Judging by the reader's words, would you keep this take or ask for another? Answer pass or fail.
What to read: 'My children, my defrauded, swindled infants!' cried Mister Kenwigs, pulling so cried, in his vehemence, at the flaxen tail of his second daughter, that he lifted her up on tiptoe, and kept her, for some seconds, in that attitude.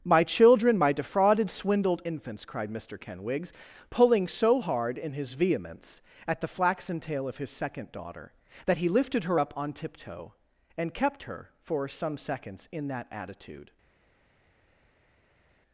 fail